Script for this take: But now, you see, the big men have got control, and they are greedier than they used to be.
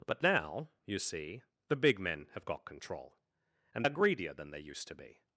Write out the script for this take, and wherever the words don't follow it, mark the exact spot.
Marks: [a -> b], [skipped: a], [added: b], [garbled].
But now, you see, the big men have got control, and [skipped: they] are greedier than they used to be.